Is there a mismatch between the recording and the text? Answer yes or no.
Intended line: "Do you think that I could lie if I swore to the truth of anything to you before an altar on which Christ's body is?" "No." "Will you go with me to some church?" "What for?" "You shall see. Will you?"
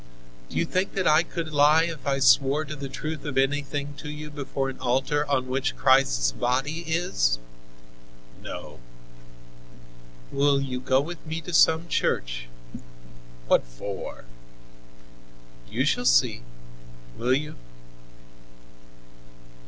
no